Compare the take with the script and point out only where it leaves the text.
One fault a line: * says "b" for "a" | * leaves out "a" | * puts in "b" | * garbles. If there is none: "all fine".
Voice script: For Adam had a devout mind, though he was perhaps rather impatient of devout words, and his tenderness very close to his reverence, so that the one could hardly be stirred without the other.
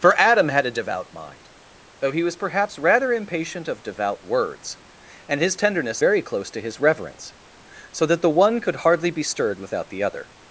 all fine